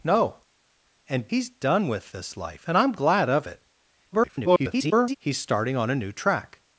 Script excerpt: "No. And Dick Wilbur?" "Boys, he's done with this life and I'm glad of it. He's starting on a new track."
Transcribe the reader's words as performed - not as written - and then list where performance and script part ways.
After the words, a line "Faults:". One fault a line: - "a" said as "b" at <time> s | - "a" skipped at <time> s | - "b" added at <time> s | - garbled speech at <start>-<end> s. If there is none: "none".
"No. And He's done with this life and I'm glad of it. [garbled] He's starting on a new track."
Faults:
- "Dick Wilbur Boys" skipped at 1.3 s
- garbled speech at 4.1-5.2 s